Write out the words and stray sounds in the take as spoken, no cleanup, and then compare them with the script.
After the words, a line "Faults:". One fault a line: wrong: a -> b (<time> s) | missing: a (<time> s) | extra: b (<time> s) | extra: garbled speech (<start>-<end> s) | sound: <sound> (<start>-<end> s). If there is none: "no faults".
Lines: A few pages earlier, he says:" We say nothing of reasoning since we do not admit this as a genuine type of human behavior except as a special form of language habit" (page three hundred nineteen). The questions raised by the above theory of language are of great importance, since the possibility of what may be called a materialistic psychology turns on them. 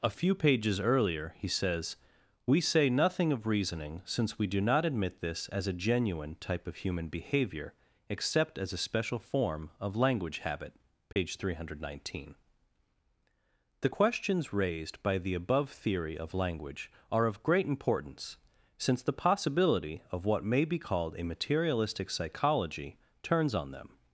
A few pages earlier, he says:" We say nothing of reasoning since we do not admit this as a genuine type of human behavior except as a special form of language habit" (page three hundred nineteen). The questions raised by the above theory of language are of great importance, since the possibility of what may be called a materialistic psychology turns on them.
Faults:
sound: dropout (11.1-11.2 s)